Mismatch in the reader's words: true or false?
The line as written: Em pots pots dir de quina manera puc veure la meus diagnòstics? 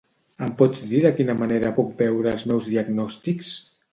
true